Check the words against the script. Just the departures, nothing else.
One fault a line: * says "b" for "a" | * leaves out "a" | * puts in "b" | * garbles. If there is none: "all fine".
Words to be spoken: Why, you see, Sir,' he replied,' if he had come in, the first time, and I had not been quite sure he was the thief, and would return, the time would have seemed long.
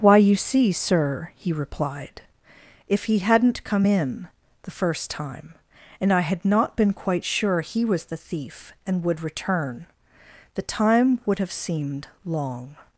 * says "hadn't" for "had"